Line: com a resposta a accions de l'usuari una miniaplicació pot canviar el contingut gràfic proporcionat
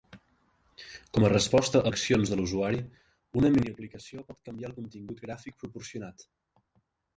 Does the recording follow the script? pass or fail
pass